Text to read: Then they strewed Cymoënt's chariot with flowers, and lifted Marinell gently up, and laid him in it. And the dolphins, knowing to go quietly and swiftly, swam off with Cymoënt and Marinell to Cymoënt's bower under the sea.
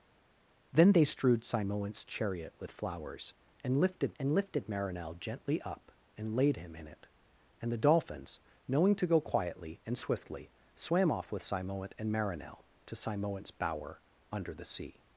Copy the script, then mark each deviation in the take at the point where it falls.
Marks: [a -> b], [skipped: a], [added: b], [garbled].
Then they strewed Cymoënt's chariot with flowers, and lifted [added: and lifted] Marinell gently up, and laid him in it. And the dolphins, knowing to go quietly and swiftly, swam off with Cymoënt and Marinell to Cymoënt's bower under the sea.